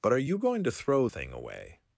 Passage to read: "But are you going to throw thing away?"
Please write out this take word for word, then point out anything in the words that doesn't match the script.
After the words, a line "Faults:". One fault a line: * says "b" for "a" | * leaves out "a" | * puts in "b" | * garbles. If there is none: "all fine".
"But are you going to throw thing away?"
Faults:
all fine